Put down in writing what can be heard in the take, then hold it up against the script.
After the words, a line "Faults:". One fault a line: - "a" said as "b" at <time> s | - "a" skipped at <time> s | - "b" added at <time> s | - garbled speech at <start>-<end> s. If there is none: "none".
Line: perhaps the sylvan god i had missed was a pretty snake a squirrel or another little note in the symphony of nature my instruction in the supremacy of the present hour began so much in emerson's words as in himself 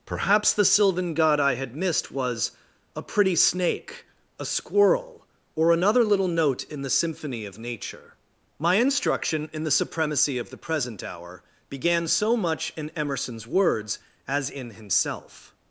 perhaps the sylvan god i had missed was a pretty snake a squirrel or another little note in the symphony of nature my instruction in the supremacy of the present hour began so much in emerson's words as in himself
Faults:
none